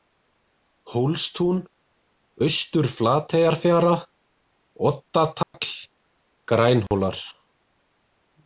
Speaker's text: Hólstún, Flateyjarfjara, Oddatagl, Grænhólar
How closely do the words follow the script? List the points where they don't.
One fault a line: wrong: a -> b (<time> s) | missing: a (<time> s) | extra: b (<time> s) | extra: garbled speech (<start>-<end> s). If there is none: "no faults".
extra: Austur (2.5 s)